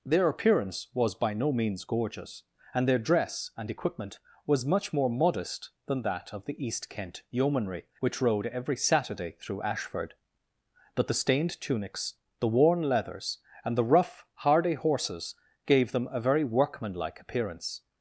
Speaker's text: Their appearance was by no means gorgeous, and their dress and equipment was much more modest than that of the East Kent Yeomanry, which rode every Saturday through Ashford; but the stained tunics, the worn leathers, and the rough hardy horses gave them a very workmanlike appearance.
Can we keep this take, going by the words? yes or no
yes